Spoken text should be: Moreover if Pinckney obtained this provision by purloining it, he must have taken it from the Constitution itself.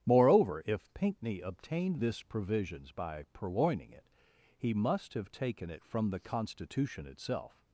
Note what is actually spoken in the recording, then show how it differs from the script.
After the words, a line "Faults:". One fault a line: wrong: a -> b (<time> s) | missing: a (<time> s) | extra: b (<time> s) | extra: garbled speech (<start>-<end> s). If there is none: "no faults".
Moreover if Pinckney obtained this provisions by purloining it, he must have taken it from the Constitution itself.
Faults:
wrong: provision -> provisions (2.2 s)